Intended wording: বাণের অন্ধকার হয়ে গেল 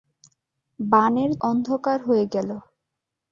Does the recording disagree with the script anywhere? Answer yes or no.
no